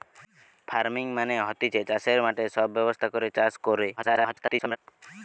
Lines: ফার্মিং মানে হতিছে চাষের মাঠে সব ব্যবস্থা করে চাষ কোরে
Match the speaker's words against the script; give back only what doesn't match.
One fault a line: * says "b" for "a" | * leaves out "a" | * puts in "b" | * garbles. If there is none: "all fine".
* garbles